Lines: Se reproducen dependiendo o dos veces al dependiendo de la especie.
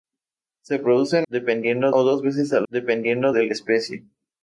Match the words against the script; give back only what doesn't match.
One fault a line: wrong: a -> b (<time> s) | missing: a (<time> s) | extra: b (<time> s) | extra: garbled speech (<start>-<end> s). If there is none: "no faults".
no faults